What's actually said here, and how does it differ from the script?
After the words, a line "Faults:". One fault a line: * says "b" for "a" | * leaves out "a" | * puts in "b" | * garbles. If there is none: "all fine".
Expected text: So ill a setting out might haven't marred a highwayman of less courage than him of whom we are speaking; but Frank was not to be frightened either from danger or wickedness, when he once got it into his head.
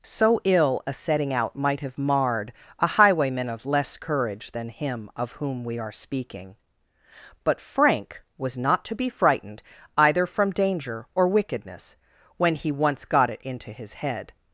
So ill a setting out might have marred a highwayman of less courage than him of whom we are speaking; but Frank was not to be frightened either from danger or wickedness, when he once got it into his head.
Faults:
* says "have" for "haven't"